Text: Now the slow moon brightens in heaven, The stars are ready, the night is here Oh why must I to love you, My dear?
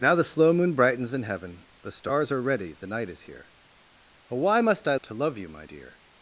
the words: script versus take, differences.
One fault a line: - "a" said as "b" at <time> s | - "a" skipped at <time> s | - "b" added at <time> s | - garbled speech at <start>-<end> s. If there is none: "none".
none